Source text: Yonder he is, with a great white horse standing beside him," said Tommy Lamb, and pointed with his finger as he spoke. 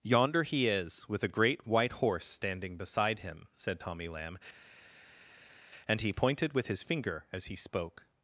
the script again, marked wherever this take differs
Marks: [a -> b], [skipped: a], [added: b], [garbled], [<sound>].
Yonder he is, with a great white horse standing beside him," said Tommy Lamb, and [added: he] pointed with his finger as he spoke.